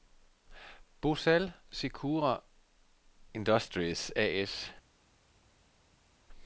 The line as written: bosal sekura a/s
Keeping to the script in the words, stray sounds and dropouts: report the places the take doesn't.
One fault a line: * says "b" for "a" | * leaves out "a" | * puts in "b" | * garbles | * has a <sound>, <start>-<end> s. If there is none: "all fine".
* puts in "industries"